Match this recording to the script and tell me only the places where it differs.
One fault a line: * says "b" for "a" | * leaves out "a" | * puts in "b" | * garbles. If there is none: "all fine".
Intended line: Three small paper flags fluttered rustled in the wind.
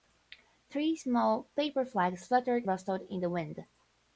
all fine